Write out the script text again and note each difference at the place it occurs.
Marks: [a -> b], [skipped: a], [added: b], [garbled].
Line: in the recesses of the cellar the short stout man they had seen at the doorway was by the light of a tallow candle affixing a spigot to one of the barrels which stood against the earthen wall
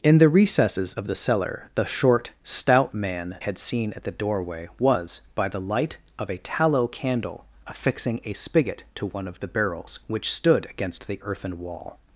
in the recesses of the cellar the short stout man [skipped: they] had seen at the doorway was by the light of a tallow candle affixing a spigot to one of the barrels which stood against the earthen wall